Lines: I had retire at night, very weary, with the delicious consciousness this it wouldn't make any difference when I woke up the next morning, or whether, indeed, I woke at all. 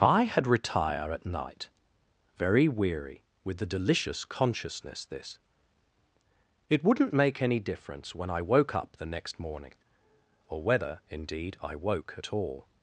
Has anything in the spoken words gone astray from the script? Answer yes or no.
no